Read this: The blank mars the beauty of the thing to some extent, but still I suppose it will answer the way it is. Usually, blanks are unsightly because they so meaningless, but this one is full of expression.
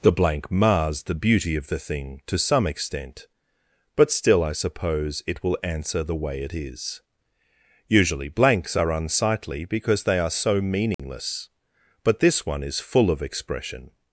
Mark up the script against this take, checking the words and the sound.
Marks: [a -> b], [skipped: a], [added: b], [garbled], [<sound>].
The blank mars the beauty of the thing to some extent, but still I suppose it will answer the way it is. Usually, blanks are unsightly because they [added: are] so meaningless, [dropout] but this one is full of expression.